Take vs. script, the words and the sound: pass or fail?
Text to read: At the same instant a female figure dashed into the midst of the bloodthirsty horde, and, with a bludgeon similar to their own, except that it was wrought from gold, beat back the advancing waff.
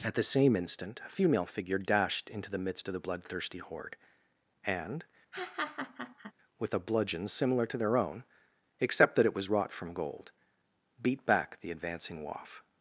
fail